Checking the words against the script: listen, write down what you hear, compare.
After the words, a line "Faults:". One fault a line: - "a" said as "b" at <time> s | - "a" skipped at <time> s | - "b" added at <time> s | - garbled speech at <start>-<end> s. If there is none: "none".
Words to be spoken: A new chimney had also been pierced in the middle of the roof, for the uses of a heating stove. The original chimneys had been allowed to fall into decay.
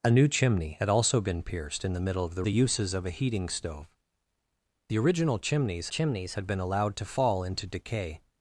A new chimney had also been pierced in the middle of the the uses of a heating stove. The original chimneys chimneys had been allowed to fall into decay.
Faults:
- "roof for" skipped at 2.4 s
- "chimneys" added at 5.9 s